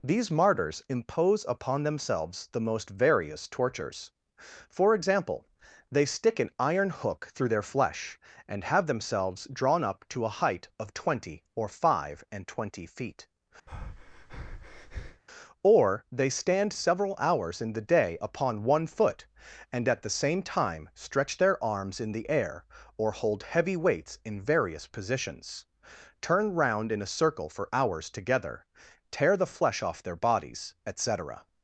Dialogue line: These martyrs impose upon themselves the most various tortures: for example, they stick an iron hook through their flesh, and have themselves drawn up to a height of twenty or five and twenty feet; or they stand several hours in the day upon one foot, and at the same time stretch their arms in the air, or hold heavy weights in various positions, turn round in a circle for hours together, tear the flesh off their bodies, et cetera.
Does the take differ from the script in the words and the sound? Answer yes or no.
yes